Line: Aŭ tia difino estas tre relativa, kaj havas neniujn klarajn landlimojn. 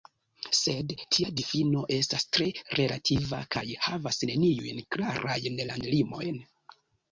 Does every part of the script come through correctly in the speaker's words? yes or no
no